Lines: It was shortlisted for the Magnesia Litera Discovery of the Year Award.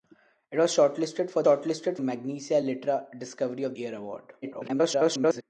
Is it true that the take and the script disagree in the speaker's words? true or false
true